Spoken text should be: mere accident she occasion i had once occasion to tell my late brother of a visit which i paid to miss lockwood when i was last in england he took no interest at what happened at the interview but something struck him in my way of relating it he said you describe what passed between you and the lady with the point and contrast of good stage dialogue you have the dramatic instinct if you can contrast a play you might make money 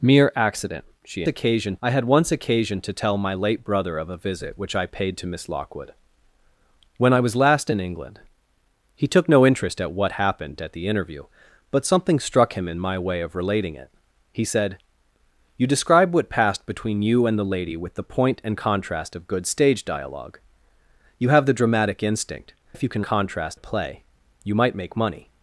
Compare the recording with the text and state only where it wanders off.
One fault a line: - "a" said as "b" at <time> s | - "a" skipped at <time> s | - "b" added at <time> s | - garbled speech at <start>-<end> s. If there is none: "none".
none